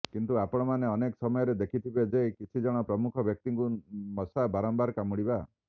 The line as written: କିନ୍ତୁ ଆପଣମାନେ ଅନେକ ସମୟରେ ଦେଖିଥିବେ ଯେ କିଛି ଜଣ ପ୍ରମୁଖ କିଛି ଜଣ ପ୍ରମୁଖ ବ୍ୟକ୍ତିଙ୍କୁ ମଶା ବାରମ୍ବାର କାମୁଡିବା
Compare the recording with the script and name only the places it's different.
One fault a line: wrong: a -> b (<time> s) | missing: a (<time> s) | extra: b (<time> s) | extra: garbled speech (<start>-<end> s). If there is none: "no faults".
missing: କିଛି ଜଣ ପ୍ରମୁଖ (3.3 s)